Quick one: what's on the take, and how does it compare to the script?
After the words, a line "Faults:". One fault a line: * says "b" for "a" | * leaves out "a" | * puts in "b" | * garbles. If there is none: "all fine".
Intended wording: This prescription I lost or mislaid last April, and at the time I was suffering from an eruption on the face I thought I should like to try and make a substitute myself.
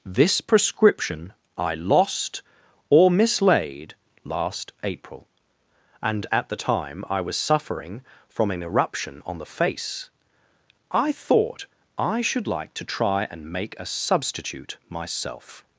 This prescription I lost or mislaid last April, and at the time I was suffering from an eruption on the face I thought I should like to try and make a substitute myself.
Faults:
all fine